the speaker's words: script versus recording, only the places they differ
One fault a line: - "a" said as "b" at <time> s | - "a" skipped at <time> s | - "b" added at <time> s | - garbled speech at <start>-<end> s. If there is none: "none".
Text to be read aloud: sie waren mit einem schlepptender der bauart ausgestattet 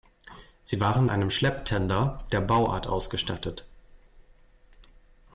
- "mit" skipped at 1.1 s